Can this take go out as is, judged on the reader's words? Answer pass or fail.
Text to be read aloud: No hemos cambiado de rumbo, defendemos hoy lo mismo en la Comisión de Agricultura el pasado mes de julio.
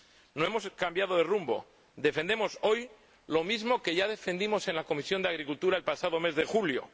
fail